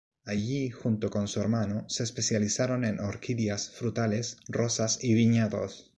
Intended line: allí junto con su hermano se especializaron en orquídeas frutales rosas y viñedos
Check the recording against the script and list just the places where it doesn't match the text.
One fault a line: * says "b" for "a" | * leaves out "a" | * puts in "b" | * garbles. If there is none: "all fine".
all fine